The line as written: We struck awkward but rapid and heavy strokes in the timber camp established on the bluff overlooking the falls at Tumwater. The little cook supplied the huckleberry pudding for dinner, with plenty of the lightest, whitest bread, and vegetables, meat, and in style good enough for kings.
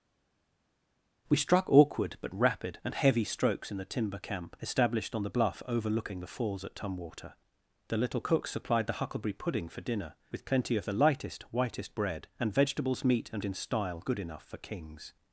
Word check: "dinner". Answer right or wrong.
right